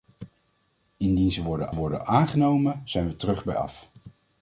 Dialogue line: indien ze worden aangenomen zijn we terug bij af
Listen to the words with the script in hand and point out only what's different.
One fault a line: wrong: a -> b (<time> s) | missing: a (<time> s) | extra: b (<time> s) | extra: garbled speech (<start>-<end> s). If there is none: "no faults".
extra: worden (1.7 s)